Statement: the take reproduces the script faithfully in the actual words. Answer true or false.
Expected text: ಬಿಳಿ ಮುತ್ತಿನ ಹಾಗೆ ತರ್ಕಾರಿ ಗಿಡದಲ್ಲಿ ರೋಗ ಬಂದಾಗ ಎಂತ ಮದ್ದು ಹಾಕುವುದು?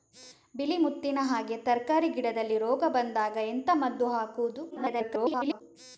false